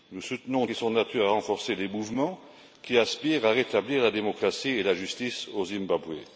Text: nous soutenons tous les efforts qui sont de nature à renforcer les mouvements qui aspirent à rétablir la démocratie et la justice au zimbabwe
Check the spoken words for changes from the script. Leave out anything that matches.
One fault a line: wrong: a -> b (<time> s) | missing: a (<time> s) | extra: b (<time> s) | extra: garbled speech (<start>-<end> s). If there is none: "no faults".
missing: tous les efforts (0.7 s)